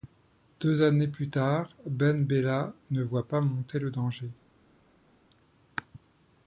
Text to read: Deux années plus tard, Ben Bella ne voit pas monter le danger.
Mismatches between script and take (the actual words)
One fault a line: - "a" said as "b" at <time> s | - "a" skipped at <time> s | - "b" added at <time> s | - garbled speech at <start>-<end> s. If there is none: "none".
none